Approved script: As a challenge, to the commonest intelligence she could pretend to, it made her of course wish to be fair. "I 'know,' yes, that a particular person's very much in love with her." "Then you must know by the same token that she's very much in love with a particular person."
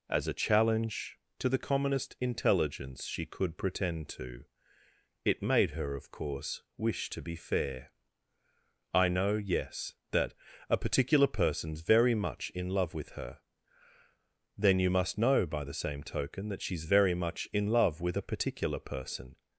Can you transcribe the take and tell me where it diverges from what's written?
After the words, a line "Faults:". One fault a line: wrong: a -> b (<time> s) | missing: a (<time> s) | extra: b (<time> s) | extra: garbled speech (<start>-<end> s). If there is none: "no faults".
As a challenge, to the commonest intelligence she could pretend to, it made her of course wish to be fair. "I 'know,' yes, that a particular person's very much in love with her." "Then you must know by the same token that she's very much in love with a particular person."
Faults:
no faults